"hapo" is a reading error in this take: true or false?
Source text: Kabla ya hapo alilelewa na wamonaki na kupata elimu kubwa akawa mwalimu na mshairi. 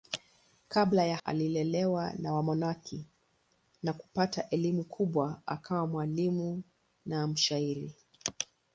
true